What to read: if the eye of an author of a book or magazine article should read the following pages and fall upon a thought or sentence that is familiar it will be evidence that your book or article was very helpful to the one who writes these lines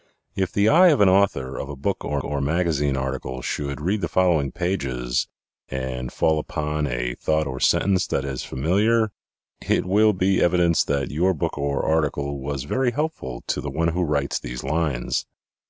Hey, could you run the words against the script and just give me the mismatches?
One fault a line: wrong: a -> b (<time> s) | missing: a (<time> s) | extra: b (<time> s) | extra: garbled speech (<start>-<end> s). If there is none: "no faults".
extra: or (2.2 s)